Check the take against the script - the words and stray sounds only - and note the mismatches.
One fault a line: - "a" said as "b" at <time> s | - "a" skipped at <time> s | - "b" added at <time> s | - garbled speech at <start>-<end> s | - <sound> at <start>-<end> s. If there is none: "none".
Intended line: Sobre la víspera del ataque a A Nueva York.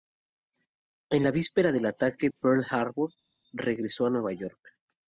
- "Sobre" said as "En" at 1.1 s
- "Pearl Harbor regresó" added at 2.3 s